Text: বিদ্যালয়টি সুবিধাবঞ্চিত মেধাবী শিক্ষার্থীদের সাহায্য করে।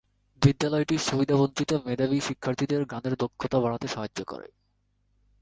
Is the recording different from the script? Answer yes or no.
yes